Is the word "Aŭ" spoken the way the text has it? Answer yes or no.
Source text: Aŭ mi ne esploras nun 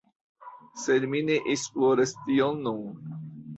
no